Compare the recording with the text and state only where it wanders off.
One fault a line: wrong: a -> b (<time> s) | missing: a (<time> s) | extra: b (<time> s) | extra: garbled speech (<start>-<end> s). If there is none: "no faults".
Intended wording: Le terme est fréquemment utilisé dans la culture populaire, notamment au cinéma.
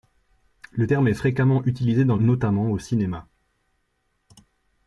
missing: la culture populaire (2.1 s)